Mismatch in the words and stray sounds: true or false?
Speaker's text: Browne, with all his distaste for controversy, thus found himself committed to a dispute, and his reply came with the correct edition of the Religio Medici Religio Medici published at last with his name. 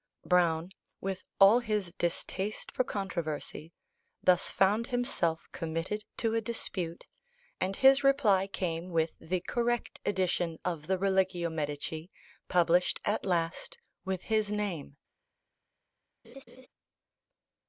true